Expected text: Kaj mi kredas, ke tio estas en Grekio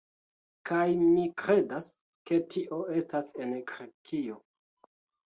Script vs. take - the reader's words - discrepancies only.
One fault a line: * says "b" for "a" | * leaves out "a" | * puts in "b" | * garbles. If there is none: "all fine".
all fine